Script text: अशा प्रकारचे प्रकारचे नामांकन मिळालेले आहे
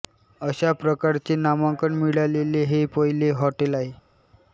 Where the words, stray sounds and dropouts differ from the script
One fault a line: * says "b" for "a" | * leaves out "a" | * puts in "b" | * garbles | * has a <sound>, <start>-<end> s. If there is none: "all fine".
* leaves out "प्रकारचे"
* puts in "हे पहिले हॉटेल"